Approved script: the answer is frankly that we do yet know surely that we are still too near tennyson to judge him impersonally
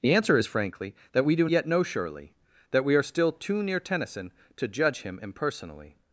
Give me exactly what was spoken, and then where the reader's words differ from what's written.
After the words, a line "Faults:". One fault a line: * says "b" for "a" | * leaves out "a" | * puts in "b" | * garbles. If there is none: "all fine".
the answer is frankly that we do yet know surely that we are still too near tennyson to judge him impersonally
Faults:
all fine